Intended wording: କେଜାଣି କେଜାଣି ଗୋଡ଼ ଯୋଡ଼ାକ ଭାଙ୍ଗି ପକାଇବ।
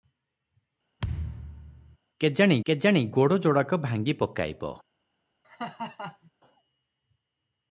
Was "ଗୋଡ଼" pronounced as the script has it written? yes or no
yes